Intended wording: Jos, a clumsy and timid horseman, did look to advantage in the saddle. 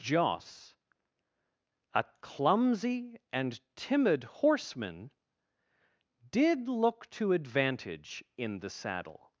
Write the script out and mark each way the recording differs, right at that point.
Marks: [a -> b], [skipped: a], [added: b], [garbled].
Jos, a clumsy and timid horseman, did look to advantage in the saddle.